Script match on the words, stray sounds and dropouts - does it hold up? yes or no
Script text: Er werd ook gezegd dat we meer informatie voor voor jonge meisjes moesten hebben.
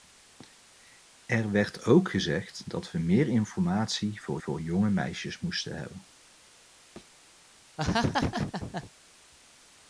no